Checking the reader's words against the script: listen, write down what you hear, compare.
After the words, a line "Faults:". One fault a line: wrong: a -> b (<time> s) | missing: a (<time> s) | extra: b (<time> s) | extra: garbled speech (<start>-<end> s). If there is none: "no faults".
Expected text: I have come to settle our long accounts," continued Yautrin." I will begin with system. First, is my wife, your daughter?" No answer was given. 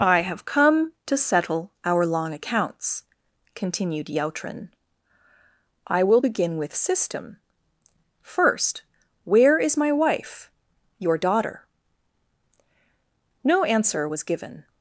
I have come to settle our long accounts," continued Yautrin." I will begin with system. First, where is my wife, your daughter?" No answer was given.
Faults:
extra: where (9.3 s)